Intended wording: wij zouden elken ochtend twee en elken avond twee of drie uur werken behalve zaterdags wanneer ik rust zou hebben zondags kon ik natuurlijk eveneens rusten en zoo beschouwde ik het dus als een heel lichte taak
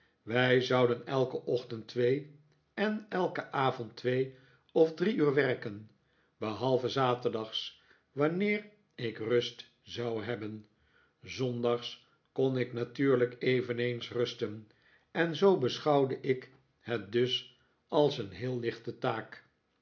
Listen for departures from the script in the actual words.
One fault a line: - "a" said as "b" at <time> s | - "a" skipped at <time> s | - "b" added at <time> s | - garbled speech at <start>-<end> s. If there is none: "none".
none